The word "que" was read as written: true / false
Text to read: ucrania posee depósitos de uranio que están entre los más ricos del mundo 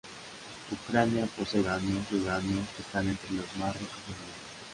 true